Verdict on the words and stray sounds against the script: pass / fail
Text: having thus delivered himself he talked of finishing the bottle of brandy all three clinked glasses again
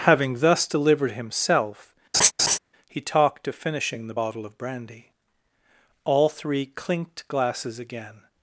fail